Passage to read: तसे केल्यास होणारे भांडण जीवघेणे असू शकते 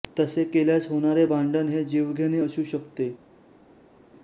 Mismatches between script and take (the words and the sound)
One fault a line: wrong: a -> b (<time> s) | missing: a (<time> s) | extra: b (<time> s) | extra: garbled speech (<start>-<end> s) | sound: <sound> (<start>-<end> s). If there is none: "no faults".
extra: हे (1.7 s)